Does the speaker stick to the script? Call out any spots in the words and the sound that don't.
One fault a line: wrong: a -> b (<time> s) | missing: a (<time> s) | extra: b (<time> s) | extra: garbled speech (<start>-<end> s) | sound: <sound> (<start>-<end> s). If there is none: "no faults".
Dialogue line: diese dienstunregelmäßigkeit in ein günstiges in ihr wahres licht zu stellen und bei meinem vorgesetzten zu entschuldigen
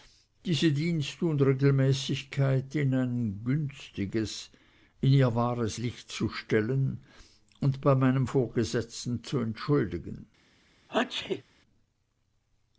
sound: sneeze (10.9-11.4 s)